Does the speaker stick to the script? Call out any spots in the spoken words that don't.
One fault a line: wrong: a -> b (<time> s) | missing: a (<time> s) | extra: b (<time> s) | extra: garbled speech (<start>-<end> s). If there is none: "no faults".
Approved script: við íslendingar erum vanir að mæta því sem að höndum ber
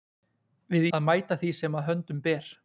missing: íslendingar erum vanir (0.9 s)